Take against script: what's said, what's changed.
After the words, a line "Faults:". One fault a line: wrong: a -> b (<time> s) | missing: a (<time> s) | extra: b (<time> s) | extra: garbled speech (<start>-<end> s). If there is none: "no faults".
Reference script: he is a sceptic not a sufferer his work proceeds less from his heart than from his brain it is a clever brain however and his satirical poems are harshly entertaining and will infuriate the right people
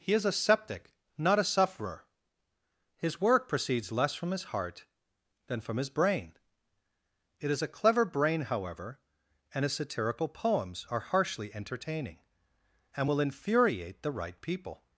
he is a sceptic not a sufferer his work proceeds less from his heart than from his brain it is a clever brain however and his satirical poems are harshly entertaining and will infuriate the right people
Faults:
no faults